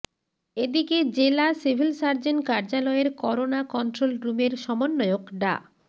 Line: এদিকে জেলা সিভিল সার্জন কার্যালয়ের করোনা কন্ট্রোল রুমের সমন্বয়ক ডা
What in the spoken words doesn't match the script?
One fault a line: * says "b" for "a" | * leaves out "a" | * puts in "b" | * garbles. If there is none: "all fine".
all fine